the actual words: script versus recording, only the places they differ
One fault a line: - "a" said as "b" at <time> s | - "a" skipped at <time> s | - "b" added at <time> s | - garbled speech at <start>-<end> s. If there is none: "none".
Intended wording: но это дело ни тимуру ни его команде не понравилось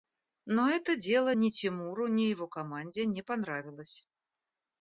none